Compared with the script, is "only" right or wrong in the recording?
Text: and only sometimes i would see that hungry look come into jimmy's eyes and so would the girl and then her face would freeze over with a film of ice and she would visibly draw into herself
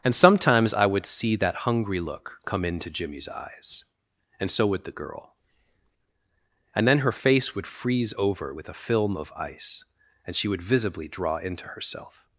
wrong